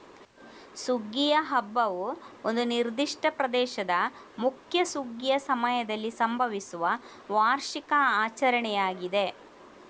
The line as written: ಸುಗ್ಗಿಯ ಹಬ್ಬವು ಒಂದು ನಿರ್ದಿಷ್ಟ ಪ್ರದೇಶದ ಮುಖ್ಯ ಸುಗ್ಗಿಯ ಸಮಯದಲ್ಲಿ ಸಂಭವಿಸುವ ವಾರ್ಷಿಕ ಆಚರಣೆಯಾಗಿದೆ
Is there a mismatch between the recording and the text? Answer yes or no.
no